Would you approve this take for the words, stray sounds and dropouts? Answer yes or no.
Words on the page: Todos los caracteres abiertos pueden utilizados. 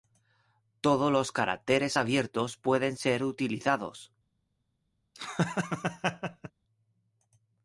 no